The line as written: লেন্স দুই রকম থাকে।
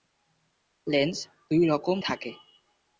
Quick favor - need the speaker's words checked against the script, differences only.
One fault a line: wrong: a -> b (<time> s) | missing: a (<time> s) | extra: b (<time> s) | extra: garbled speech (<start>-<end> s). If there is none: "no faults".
no faults